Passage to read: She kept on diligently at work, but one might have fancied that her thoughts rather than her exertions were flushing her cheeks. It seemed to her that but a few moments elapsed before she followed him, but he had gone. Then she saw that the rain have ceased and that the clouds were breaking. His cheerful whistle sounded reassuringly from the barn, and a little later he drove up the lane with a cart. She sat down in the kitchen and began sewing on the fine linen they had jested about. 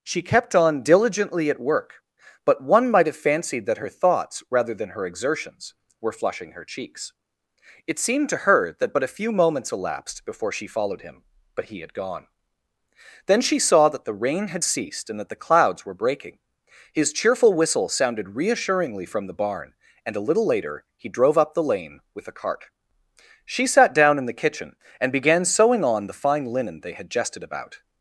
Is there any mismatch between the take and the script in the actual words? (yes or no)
yes